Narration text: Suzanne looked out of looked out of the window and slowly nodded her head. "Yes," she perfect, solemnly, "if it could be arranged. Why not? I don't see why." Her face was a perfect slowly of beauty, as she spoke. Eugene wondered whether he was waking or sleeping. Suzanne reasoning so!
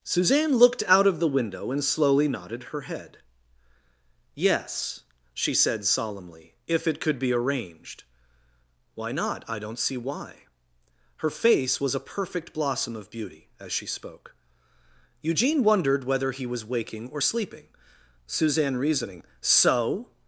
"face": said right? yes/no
yes